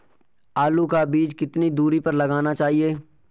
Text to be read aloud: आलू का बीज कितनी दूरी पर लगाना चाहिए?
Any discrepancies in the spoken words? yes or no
no